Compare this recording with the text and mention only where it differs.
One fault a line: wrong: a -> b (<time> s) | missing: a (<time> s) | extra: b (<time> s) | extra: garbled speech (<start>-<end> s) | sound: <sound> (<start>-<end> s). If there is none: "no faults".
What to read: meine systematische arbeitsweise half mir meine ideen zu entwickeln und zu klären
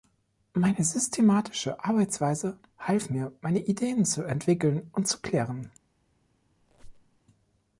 sound: squeak (6.6-7.2 s)